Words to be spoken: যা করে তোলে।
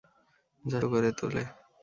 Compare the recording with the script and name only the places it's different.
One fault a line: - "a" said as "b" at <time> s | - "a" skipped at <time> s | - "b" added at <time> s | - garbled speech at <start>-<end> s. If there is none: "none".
none